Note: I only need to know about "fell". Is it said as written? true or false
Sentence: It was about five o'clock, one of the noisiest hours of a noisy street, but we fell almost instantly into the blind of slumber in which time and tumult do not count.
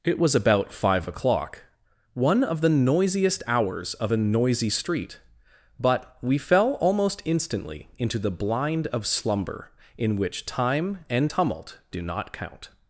true